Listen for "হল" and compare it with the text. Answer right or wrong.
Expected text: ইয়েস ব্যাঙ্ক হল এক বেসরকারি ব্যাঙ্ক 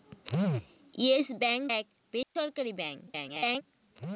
wrong